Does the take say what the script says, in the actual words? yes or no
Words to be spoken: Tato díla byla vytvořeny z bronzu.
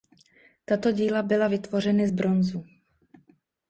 yes